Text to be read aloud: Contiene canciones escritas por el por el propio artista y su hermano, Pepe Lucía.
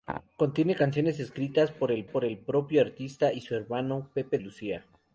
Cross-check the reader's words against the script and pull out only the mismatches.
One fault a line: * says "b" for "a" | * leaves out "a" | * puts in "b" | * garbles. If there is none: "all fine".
all fine